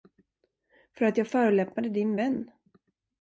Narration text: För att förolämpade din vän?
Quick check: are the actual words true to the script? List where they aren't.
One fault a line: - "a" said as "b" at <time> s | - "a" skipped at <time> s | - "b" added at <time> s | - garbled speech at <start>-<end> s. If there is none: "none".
- "jag" added at 1.2 s